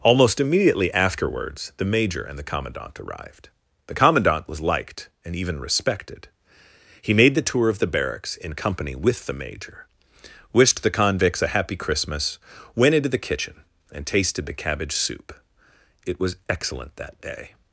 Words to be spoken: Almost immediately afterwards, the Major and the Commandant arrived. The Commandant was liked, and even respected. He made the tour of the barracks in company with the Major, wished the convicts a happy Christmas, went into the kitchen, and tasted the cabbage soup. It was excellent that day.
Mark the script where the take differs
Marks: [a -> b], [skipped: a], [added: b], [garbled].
Almost immediately afterwards, the Major and the Commandant arrived. The Commandant was liked, and even respected. He made the tour of the barracks in company with the Major, wished the convicts a happy Christmas, went into the kitchen, and tasted the cabbage soup. It was excellent that day.